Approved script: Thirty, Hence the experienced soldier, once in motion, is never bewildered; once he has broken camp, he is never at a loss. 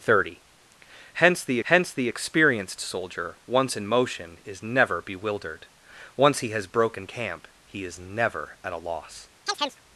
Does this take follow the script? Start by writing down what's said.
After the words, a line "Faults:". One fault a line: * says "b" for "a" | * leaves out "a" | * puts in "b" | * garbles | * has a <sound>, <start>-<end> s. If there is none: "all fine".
Thirty, Hence the Hence the experienced soldier, once in motion, is never bewildered; once he has broken camp, he is never at a loss.
Faults:
* puts in "Hence the"
* has a chirp, 9.5-9.8 s